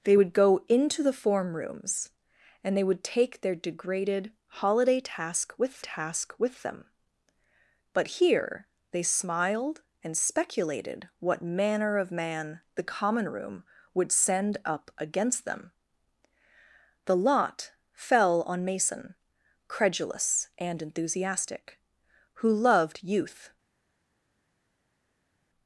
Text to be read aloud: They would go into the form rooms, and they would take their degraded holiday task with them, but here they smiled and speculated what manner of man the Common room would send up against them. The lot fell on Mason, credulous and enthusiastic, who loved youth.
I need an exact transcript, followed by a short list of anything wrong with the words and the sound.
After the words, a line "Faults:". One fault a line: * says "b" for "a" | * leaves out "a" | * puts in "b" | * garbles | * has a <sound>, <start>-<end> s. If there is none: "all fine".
They would go into the form rooms, and they would take their degraded holiday task with task with them, but here they smiled and speculated what manner of man the Common room would send up against them. The lot fell on Mason, credulous and enthusiastic, who loved youth.
Faults:
* puts in "task with"